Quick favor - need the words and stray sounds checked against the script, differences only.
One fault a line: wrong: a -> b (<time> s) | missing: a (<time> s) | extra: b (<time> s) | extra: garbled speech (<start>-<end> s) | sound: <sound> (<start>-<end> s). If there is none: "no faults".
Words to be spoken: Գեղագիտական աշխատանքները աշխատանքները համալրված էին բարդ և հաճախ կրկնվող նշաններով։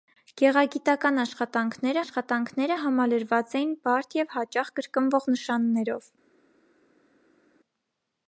no faults